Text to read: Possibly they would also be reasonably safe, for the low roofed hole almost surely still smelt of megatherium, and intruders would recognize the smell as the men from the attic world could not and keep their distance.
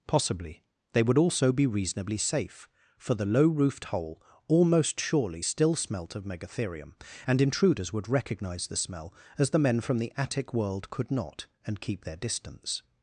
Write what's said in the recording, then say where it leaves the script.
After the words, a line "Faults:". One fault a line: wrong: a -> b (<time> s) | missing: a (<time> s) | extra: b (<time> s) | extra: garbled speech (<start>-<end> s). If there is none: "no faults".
Possibly they would also be reasonably safe, for the low roofed hole almost surely still smelt of megatherium, and intruders would recognize the smell as the men from the attic world could not and keep their distance.
Faults:
no faults